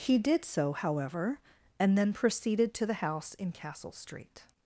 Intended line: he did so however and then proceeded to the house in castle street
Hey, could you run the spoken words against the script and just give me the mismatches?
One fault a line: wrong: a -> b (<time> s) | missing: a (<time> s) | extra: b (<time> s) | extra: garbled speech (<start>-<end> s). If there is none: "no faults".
no faults